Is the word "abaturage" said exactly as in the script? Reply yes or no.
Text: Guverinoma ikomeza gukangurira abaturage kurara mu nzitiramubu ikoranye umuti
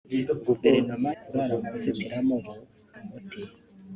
no